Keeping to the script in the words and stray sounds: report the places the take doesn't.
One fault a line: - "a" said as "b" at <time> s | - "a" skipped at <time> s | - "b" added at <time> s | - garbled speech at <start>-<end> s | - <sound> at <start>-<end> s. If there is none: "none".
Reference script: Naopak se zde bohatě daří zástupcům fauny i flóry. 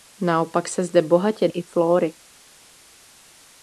- "daří zástupcům fauny" skipped at 1.5 s